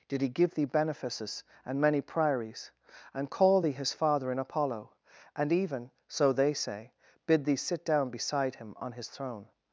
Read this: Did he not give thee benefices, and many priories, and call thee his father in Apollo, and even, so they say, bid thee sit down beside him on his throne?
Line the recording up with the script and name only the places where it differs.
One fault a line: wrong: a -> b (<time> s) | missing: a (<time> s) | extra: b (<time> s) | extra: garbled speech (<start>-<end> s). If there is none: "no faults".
missing: not (0.3 s)